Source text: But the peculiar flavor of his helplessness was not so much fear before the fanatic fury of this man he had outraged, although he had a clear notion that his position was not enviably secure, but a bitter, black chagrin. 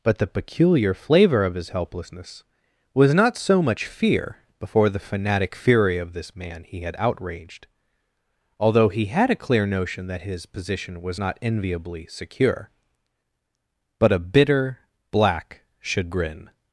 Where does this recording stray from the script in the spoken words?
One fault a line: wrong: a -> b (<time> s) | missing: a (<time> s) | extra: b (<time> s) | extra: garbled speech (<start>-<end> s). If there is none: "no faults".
no faults